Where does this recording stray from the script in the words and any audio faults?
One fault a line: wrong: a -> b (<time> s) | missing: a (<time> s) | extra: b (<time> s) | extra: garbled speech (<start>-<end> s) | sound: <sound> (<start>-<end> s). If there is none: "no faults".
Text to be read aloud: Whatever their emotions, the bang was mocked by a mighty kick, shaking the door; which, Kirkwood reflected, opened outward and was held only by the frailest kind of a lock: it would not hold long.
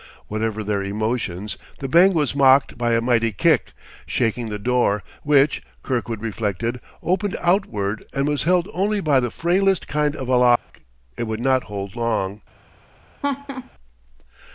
sound: dropout (10.6-10.7 s)
sound: laugh (13.2-13.7 s)